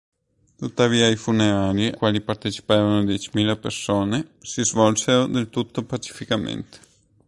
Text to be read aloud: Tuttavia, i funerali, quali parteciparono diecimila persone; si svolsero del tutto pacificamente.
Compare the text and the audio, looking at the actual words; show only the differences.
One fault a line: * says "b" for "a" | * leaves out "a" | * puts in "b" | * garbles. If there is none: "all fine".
all fine